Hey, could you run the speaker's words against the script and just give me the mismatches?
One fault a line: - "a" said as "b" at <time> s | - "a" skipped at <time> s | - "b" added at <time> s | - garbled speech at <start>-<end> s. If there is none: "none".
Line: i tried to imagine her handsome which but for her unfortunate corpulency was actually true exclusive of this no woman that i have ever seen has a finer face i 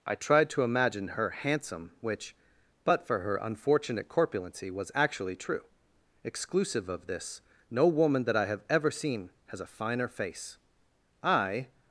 none